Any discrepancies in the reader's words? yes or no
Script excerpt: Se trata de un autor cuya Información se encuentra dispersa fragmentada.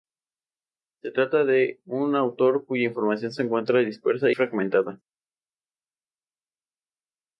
no